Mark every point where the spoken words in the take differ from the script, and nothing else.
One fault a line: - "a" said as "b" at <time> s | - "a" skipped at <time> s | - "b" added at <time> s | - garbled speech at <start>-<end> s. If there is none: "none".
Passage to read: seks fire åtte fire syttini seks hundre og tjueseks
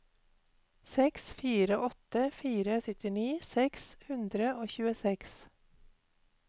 none